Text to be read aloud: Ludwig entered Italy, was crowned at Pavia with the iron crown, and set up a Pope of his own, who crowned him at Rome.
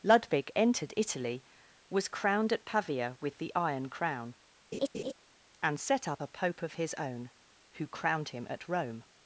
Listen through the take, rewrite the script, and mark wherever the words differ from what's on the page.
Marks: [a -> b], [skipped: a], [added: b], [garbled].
Ludwig entered Italy, was crowned at Pavia with the iron crown, and set up a Pope of his own, who crowned him at Rome.